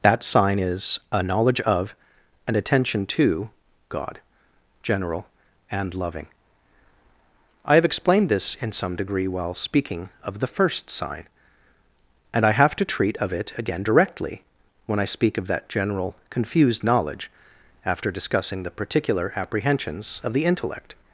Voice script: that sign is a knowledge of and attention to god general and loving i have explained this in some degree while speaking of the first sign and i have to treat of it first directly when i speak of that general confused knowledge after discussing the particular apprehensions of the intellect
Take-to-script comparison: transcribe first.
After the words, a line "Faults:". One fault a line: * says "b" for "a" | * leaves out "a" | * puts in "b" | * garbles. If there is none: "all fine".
that sign is a knowledge of and attention to god general and loving i have explained this in some degree while speaking of the first sign and i have to treat of it again directly when i speak of that general confused knowledge after discussing the particular apprehensions of the intellect
Faults:
* says "again" for "first"